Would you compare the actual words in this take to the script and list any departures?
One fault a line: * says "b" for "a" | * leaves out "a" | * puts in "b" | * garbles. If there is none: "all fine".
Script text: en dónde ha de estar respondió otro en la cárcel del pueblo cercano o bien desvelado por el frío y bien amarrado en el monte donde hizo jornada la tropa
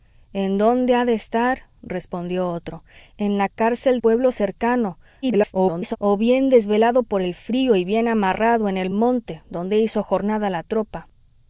* leaves out "del"
* garbles